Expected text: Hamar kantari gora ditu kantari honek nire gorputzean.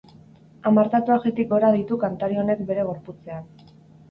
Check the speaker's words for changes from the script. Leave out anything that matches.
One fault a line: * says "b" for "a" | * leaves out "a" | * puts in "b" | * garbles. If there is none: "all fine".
* says "tatuajetik" for "kantari"
* says "bere" for "nire"